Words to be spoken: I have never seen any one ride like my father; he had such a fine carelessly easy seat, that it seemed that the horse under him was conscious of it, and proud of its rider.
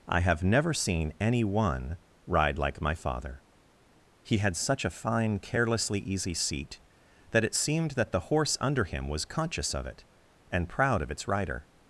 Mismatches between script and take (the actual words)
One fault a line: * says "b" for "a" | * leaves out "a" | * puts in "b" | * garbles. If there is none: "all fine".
all fine